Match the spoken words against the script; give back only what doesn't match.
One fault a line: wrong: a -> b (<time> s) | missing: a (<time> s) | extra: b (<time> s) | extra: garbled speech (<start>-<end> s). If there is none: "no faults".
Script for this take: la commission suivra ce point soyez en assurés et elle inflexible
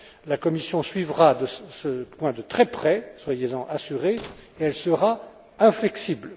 extra: de très près (2.3 s)
extra: sera (4.7 s)